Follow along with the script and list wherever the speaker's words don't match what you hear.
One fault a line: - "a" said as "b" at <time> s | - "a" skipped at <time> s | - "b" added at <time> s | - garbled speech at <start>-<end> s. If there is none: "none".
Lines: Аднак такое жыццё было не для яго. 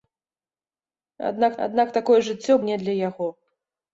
- "аднак" added at 1.7 s
- "было" skipped at 2.6 s